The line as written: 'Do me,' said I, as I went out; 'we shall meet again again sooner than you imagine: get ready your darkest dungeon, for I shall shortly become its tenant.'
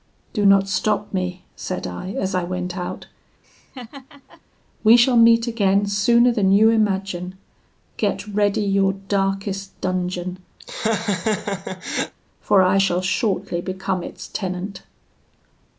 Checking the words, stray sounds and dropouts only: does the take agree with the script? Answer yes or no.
no